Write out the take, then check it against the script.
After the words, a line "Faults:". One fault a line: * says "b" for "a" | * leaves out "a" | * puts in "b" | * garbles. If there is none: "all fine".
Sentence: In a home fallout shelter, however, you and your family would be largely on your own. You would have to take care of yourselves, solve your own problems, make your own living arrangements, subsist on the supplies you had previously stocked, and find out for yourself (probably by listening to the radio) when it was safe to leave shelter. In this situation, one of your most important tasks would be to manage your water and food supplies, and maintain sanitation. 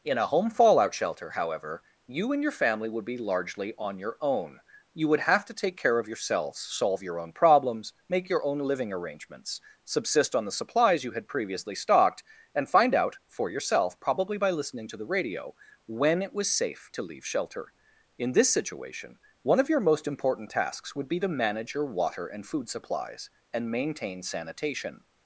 In a home fallout shelter, however, you and your family would be largely on your own. You would have to take care of yourselves, solve your own problems, make your own living arrangements, subsist on the supplies you had previously stocked, and find out for yourself (probably by listening to the radio) when it was safe to leave shelter. In this situation, one of your most important tasks would be to manage your water and food supplies, and maintain sanitation.
Faults:
all fine